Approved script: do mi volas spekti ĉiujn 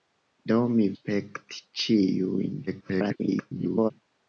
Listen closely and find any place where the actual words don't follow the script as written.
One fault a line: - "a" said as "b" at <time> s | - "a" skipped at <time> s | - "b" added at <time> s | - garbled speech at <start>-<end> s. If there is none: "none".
- "volas" skipped at 0.9 s
- garbled speech at 2.7-3.9 s